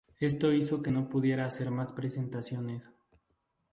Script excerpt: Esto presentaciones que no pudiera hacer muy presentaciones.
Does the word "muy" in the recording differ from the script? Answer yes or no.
yes